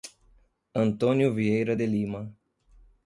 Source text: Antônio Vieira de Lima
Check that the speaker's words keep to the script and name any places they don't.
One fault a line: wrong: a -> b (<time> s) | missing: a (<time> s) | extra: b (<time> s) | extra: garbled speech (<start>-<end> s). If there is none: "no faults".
no faults